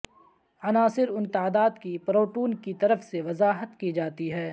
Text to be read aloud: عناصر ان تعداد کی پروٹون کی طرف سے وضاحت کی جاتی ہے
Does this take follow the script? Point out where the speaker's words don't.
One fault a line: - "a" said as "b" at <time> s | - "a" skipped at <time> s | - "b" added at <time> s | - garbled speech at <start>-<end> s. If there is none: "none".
none